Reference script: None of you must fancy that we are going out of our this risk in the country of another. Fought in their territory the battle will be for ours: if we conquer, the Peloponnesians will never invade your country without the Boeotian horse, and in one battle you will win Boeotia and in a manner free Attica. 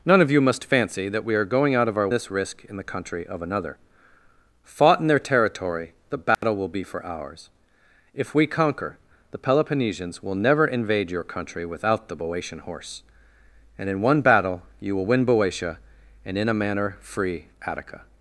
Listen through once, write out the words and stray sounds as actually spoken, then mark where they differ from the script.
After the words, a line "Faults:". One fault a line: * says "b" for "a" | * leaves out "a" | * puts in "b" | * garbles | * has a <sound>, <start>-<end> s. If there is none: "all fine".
None of you must fancy that we are going out of our this risk in the country of another. Fought in their territory the battle will be for ours: if we conquer, the Peloponnesians will never invade your country without the Boeotian horse, and in one battle you will win Boeotia and in a manner free Attica.
Faults:
* has a dropout, 6.3-6.4 s